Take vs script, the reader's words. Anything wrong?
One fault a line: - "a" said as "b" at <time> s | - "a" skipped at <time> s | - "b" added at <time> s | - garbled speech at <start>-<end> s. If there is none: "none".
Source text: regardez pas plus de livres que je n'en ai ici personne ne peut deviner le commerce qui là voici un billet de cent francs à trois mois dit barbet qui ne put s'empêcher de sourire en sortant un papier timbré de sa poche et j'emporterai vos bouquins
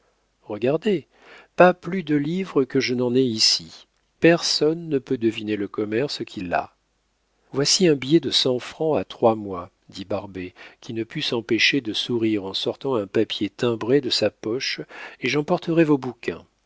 none